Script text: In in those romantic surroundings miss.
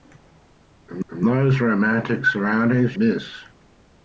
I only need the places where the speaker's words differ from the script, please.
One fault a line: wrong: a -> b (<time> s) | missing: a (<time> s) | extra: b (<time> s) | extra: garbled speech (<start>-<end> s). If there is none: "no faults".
no faults